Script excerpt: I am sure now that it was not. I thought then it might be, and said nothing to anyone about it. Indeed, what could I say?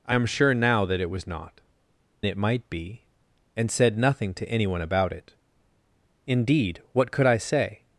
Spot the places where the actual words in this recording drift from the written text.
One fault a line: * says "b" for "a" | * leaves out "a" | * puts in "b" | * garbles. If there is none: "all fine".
* leaves out "I thought then"